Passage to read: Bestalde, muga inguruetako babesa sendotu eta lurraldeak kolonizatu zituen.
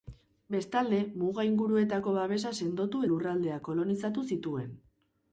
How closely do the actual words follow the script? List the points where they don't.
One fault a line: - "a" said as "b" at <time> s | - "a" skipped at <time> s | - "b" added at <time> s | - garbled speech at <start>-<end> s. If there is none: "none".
- "eta" skipped at 3.0 s